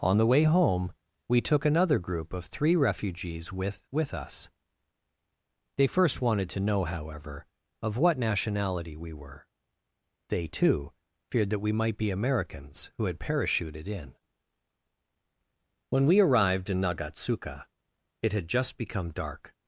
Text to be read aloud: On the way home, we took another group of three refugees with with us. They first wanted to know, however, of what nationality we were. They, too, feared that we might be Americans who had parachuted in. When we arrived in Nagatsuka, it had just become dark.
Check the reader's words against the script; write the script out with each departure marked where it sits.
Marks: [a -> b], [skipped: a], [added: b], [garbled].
On the way home, we took another group of three refugees with with us. They first wanted to know, however, of what nationality we were. They, too, feared that we might be Americans who had parachuted in. When we arrived in Nagatsuka, it had just become dark.